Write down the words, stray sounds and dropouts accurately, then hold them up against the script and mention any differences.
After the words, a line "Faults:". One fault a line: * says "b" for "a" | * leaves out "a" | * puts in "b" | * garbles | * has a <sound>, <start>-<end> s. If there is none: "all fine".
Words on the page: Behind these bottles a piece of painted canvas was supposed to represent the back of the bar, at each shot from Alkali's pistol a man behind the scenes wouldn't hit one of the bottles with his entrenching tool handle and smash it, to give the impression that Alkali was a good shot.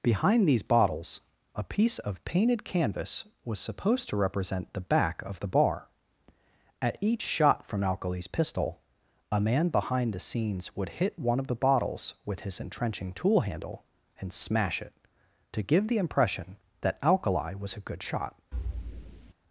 Behind these bottles a piece of painted canvas was supposed to represent the back of the bar, at each shot from Alkali's pistol a man behind the scenes would hit one of the bottles with his entrenching tool handle and smash it, to give the impression that Alkali was a good shot.
Faults:
* says "would" for "wouldn't"
* has a thud, 18.5-19.3 s